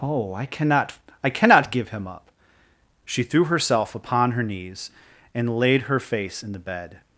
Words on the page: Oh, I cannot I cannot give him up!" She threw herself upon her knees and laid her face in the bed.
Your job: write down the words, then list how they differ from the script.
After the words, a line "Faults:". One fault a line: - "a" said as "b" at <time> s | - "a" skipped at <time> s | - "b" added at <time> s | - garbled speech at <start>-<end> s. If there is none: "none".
Oh, I cannot I cannot give him up!" She threw herself upon her knees and laid her face in the bed.
Faults:
none